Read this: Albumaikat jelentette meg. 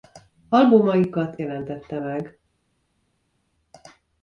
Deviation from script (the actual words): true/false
false